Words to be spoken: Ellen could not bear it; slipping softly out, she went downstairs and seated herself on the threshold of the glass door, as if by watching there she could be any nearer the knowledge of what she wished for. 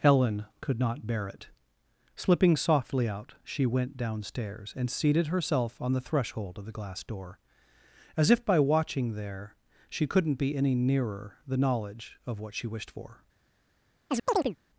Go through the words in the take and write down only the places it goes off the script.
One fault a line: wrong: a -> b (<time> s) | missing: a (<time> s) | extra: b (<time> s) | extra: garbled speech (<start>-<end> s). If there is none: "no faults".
wrong: could -> couldn't (10.1 s)